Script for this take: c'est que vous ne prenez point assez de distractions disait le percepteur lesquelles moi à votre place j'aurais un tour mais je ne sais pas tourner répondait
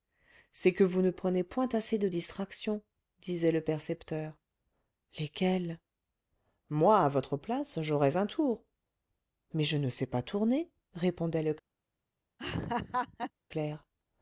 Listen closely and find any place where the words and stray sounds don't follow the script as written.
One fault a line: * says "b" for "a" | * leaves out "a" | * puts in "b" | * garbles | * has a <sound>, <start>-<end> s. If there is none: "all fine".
* has a laugh, 12.4-13.3 s